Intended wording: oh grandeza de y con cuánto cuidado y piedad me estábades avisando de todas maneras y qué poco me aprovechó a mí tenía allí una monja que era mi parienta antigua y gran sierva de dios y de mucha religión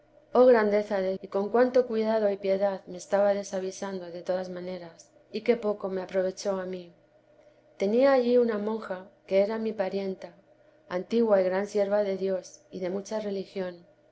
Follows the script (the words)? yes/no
yes